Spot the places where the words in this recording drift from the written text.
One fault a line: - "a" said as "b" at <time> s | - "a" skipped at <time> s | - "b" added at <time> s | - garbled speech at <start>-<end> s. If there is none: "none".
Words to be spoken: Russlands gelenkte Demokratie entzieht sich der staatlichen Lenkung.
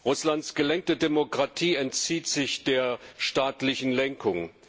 none